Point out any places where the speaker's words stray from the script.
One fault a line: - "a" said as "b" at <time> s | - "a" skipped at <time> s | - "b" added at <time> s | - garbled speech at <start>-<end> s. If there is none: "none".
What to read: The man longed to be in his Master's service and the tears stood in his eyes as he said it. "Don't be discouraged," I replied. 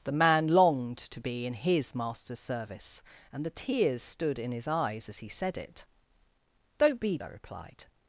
- "discouraged" skipped at 7.2 s